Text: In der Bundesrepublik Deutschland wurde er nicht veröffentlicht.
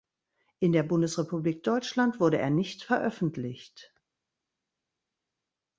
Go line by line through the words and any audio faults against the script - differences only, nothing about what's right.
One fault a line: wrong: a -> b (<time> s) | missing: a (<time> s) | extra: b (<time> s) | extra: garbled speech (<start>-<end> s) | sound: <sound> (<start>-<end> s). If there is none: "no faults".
no faults